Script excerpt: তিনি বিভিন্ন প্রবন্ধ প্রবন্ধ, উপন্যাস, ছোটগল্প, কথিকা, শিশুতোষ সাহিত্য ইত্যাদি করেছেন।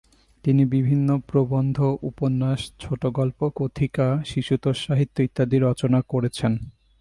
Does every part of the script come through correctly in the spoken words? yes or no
no